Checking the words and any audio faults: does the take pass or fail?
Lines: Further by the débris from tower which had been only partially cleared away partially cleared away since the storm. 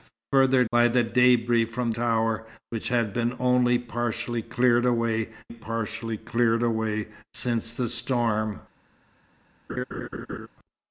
fail